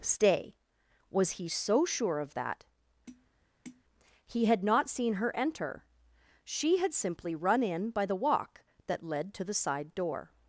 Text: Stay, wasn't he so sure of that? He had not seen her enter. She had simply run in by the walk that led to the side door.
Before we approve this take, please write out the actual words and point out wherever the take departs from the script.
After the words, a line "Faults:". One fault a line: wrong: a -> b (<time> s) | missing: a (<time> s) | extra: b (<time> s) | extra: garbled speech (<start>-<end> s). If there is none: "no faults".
Stay, was he so sure of that? He had not seen her enter. She had simply run in by the walk that led to the side door.
Faults:
wrong: wasn't -> was (1.1 s)